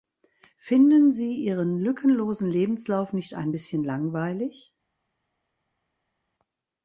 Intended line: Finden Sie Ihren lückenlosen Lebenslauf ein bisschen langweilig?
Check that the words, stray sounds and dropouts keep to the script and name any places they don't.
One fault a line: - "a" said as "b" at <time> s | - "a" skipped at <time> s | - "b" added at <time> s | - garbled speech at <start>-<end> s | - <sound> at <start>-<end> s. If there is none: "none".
- "nicht" added at 3.1 s